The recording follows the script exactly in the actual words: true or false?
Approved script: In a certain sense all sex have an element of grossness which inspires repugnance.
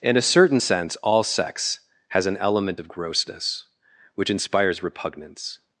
false